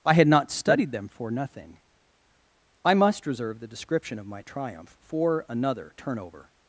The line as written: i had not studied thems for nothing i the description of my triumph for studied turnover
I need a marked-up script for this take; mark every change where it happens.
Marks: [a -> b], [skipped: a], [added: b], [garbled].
i had not studied [thems -> them] for nothing i [added: must reserve] the description of my triumph for [studied -> another] turnover